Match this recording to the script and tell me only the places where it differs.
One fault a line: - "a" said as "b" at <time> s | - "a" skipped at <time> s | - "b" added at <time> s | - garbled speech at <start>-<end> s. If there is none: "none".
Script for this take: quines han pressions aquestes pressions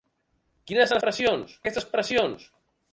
none